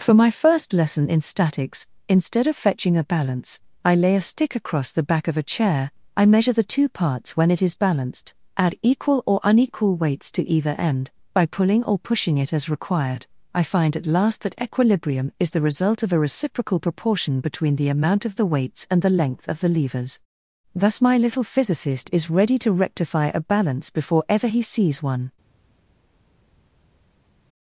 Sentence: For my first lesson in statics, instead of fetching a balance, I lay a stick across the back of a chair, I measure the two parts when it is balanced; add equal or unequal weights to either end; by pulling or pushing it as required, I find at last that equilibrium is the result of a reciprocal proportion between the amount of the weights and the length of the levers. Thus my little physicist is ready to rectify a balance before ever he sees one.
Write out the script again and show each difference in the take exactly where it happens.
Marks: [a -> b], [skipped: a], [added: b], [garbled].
For my first lesson in statics, instead of fetching a balance, I lay a stick across the back of a chair, I measure the two parts when it is balanced; add equal or unequal weights to either end; by pulling or pushing it as required, I find at last that equilibrium is the result of a reciprocal proportion between the amount of the weights and the length of the levers. Thus my little physicist is ready to rectify a balance before ever he sees one.